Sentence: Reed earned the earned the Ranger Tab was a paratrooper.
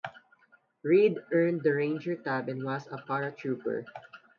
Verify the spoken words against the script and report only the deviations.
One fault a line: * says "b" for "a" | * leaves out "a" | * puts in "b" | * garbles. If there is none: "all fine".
* leaves out "earned the"
* puts in "and"